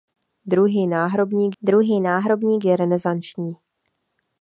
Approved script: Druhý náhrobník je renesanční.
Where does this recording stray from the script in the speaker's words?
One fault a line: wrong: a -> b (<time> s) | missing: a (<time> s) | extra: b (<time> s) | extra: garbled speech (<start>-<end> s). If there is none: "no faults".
extra: druhý náhrobník (1.6 s)